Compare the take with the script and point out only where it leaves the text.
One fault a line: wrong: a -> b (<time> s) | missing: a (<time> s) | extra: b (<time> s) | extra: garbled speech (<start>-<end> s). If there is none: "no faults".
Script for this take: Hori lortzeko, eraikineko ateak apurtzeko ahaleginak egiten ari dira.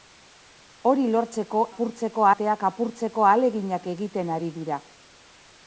wrong: eraikineko -> apurtzeko (1.7 s)